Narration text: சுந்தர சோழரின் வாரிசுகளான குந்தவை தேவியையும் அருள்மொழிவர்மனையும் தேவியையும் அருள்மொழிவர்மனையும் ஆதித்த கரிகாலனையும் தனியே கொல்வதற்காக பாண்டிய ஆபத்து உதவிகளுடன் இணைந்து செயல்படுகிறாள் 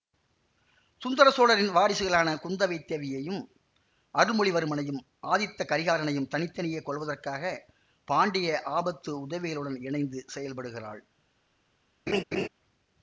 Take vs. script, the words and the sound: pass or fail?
fail